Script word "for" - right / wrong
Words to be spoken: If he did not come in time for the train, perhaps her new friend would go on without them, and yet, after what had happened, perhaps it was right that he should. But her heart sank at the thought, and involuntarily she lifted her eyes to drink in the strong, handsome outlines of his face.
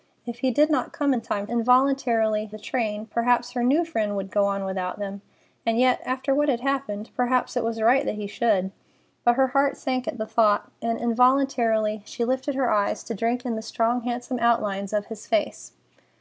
wrong